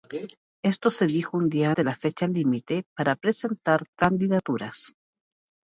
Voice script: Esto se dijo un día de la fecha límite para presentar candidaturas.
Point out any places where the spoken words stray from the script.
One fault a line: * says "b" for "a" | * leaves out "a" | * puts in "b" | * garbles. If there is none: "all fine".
all fine